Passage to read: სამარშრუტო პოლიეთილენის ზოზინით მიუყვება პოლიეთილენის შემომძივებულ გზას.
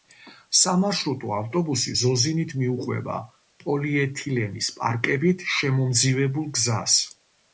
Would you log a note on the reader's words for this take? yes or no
yes